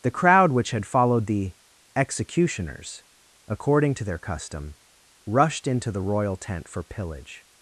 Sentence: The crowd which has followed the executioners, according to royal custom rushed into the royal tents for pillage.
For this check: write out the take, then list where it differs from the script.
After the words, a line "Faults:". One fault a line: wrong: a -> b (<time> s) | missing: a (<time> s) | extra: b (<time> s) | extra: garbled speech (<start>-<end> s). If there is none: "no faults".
The crowd which had followed the executioners, according to their custom rushed into the royal tent for pillage.
Faults:
wrong: has -> had (0.7 s)
wrong: royal -> their (4.0 s)
wrong: tents -> tent (6.4 s)